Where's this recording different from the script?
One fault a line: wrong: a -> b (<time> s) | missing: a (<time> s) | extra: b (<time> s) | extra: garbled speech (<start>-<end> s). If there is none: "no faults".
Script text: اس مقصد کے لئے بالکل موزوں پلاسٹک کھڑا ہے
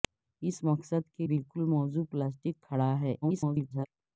missing: لئے (1.3 s)
extra: garbled speech (3.2-3.9 s)